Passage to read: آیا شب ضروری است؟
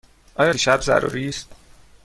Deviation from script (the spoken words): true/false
false